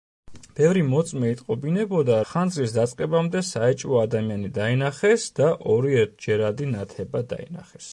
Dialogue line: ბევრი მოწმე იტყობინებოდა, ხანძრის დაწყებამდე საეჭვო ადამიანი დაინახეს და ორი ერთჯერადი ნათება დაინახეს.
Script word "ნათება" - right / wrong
right